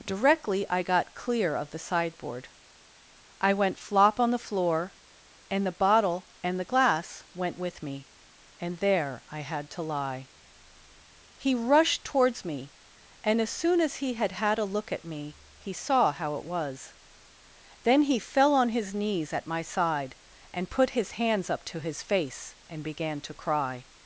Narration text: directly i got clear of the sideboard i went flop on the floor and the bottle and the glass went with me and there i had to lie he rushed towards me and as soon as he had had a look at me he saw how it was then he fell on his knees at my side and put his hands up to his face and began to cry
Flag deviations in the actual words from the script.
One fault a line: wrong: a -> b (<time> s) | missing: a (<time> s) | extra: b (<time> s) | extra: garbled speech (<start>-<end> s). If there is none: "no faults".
no faults